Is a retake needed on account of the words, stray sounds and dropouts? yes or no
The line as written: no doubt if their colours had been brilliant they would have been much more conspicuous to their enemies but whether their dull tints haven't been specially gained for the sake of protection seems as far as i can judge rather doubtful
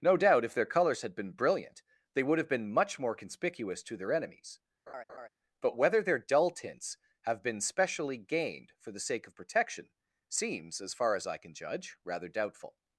yes